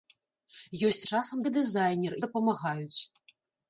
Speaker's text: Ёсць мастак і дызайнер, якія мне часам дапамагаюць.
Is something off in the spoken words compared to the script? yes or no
yes